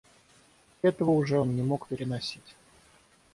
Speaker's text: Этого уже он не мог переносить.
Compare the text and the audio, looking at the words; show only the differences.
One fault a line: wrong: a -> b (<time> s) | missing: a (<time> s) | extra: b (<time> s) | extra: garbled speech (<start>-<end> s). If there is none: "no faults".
no faults